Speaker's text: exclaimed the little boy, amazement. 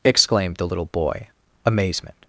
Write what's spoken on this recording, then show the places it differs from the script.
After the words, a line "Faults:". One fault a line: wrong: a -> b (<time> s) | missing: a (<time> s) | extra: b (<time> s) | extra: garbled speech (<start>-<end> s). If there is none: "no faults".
exclaimed the little boy, amazement.
Faults:
no faults